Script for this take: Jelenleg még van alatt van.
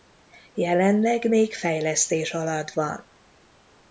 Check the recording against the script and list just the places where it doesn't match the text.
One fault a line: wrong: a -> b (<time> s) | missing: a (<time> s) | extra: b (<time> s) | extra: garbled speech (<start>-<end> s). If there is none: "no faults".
wrong: van -> fejlesztés (1.5 s)